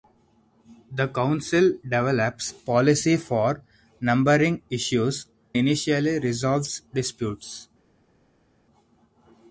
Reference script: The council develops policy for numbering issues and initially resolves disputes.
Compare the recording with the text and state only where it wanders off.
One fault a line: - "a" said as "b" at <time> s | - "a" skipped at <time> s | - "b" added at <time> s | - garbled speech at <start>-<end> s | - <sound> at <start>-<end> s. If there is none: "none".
- "and" skipped at 5.3 s